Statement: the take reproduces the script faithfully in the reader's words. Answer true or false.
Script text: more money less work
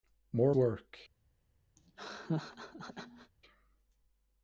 false